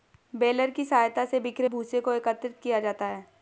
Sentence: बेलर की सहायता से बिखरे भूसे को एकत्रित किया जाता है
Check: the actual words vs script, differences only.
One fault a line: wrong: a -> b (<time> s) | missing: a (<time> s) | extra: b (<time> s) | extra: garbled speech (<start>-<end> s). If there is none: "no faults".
no faults